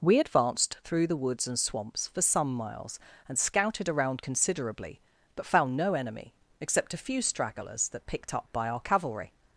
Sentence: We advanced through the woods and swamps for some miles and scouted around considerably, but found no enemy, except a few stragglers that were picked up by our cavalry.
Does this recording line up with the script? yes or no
no